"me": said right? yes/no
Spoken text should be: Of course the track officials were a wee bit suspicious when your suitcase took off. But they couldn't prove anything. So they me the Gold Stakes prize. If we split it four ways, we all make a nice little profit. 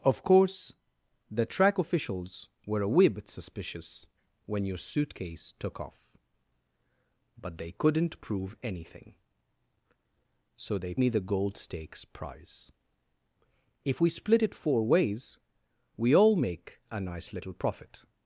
yes